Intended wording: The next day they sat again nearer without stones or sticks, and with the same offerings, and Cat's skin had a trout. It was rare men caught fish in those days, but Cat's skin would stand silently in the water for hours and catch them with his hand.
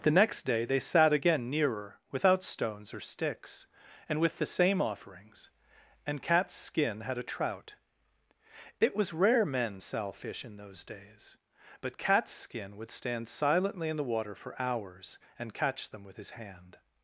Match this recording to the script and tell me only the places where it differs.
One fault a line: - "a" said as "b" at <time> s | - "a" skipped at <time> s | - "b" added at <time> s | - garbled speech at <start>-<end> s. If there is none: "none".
- "caught" said as "sell" at 9.8 s